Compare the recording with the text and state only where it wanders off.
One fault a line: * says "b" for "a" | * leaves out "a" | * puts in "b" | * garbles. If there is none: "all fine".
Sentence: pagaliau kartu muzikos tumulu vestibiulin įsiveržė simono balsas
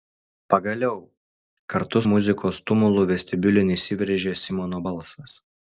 all fine